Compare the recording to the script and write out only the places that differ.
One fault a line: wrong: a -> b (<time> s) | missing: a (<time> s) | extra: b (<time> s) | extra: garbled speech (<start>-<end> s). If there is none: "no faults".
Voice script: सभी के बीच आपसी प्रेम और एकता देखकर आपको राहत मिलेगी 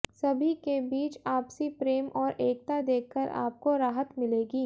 no faults